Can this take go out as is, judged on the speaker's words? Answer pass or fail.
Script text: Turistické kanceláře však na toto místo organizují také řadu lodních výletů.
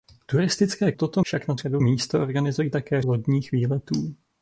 fail